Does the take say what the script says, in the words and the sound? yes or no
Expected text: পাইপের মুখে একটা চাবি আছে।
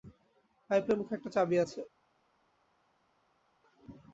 yes